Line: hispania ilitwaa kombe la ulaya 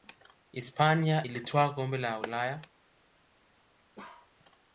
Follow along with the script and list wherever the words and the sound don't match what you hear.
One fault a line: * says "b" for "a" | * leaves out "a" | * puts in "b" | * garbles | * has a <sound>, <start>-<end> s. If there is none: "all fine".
* has a bark, 4.0-4.3 s